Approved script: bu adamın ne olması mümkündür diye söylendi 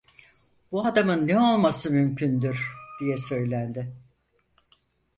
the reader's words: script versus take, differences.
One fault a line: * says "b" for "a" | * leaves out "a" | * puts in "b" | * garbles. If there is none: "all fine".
all fine